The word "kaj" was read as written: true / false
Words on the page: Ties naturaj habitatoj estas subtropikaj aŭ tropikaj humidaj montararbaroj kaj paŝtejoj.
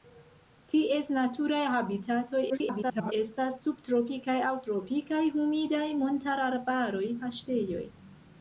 false